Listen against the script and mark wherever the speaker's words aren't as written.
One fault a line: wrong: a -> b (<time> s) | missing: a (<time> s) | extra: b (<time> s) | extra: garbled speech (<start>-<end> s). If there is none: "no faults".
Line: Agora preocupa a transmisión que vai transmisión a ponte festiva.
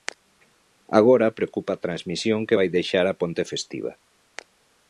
wrong: transmisión -> deixar (2.8 s)